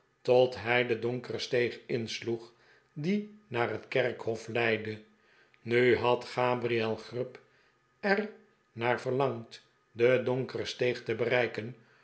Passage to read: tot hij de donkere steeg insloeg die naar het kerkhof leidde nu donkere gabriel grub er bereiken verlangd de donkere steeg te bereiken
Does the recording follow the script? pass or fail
fail